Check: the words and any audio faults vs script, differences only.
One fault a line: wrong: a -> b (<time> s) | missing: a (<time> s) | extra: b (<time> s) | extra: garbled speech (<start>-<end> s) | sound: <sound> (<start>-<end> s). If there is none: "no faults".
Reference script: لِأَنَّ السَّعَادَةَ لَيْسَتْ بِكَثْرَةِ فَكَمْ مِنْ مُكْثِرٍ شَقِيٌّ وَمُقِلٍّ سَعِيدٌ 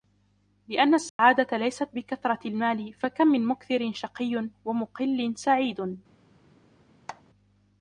sound: dropout (1.1-1.2 s)
extra: الْمَالِ (2.5 s)
sound: squeak (7.1-7.2 s)